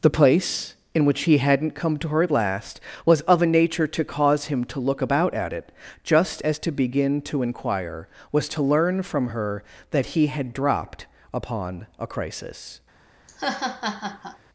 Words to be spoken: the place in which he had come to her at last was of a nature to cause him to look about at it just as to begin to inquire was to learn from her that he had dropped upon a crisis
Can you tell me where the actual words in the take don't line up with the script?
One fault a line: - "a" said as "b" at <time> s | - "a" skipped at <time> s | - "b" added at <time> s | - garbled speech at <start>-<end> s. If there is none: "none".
- "had" said as "hadn't" at 1.4 s